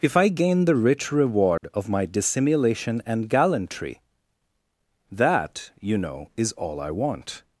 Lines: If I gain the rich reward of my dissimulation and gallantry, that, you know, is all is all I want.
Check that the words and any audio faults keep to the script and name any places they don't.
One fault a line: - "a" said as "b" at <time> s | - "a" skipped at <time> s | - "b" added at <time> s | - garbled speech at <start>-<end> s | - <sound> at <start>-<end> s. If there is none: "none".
- dropout at 1.6-1.6 s
- "is all" skipped at 6.8 s